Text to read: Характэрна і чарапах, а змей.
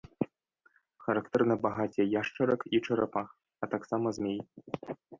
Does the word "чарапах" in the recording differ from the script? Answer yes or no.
no